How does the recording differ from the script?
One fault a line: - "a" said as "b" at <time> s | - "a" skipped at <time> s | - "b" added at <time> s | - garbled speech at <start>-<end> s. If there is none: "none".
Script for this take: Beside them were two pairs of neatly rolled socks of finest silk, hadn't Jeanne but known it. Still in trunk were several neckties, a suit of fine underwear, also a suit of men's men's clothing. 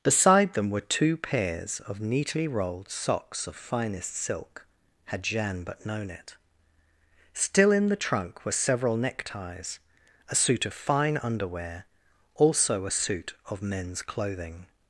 - "hadn't" said as "had" at 5.0 s
- "the" added at 7.9 s
- "men's" skipped at 14.0 s